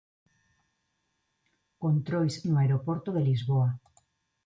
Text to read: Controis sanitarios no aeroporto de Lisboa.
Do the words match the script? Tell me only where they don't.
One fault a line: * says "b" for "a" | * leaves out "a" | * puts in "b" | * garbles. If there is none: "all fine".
* leaves out "sanitarios"